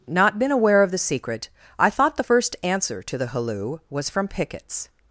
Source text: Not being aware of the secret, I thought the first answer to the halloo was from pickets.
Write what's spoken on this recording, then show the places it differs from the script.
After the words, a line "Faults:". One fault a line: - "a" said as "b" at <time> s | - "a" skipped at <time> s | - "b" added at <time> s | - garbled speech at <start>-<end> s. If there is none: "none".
Not been aware of the secret, I thought the first answer to the halloo was from pickets.
Faults:
- "being" said as "been" at 0.4 s